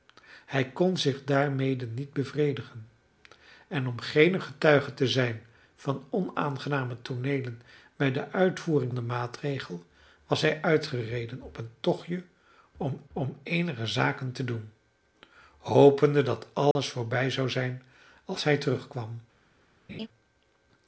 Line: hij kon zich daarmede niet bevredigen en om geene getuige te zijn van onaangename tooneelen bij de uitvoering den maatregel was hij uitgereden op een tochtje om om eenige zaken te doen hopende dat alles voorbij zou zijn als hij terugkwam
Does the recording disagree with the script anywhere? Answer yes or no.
no